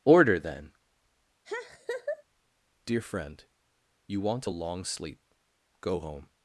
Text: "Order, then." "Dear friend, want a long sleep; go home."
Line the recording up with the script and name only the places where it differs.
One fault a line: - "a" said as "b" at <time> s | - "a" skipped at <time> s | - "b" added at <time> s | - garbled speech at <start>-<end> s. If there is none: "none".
- "you" added at 4.1 s